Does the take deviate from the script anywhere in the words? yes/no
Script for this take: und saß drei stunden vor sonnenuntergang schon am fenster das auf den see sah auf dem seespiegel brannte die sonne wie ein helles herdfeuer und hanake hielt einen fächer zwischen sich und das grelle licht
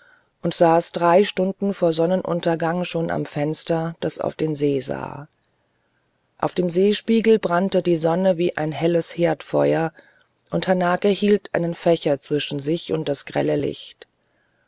no